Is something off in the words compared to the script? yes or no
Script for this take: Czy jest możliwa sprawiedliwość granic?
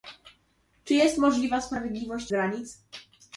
no